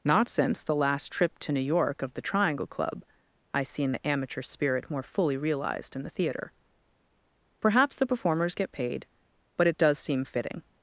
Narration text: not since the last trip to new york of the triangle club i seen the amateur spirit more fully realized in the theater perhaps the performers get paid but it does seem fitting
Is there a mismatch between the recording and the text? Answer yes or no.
no